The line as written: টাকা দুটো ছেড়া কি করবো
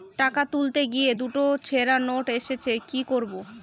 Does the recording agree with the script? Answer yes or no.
no